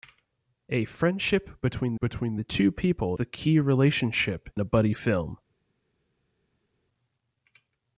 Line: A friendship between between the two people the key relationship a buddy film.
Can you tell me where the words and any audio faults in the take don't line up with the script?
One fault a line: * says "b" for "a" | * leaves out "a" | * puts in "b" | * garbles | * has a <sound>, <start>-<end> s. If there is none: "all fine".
all fine